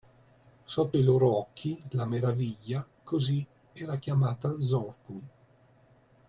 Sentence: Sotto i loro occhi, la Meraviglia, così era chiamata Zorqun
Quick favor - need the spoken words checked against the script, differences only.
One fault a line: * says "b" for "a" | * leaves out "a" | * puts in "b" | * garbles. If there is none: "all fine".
all fine